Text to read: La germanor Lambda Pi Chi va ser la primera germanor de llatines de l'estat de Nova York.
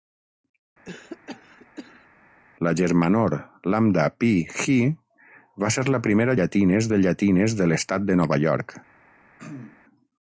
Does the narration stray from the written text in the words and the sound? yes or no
yes